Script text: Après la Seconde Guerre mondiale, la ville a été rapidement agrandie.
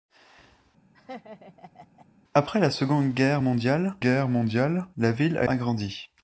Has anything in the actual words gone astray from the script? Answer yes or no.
yes